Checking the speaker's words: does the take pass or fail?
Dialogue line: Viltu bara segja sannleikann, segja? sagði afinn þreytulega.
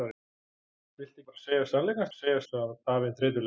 pass